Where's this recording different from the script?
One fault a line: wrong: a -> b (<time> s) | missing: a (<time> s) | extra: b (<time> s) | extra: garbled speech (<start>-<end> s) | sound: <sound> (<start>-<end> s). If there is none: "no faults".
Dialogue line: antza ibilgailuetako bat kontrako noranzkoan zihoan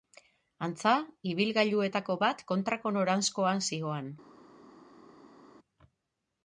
no faults